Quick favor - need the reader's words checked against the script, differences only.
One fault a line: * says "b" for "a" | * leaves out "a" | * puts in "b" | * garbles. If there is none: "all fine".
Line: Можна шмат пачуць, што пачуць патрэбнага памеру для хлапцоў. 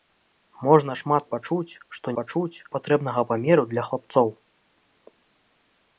all fine